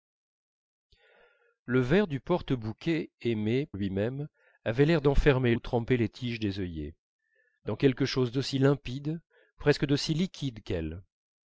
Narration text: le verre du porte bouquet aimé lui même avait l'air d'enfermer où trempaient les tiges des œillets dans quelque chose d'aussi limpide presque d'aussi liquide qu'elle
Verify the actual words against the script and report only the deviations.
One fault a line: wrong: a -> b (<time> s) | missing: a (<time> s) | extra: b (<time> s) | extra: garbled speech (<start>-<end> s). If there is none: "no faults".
no faults